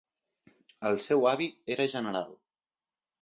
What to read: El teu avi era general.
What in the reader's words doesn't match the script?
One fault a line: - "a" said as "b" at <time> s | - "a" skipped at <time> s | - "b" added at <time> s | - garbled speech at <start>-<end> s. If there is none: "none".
- "teu" said as "seu" at 1.0 s